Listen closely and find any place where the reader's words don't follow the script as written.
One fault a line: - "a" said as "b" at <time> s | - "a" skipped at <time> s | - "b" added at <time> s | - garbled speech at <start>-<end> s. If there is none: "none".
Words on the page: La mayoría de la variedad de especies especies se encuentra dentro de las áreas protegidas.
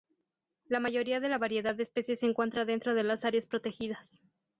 - "especies" skipped at 2.2 s